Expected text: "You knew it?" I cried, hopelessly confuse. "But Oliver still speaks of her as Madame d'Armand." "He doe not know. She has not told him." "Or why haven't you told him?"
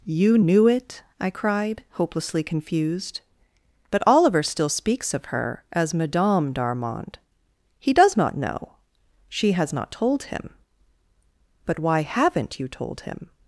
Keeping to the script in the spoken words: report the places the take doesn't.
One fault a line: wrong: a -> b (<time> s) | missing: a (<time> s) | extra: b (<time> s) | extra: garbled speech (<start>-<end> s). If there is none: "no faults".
wrong: confuse -> confused (2.4 s)
wrong: doe -> does (7.9 s)
wrong: Or -> But (11.6 s)